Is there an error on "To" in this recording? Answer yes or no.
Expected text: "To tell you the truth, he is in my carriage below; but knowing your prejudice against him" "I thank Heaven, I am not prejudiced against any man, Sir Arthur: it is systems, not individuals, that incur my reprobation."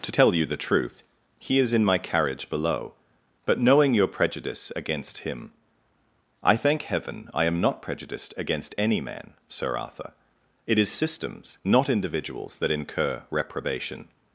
no